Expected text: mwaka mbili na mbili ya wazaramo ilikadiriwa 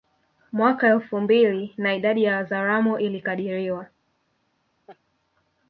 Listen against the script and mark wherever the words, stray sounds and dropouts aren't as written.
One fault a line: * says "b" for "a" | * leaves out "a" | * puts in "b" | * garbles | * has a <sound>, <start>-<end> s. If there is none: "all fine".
* puts in "elfu"
* says "idadi" for "mbili"
* has a laugh, 4.9-5.0 s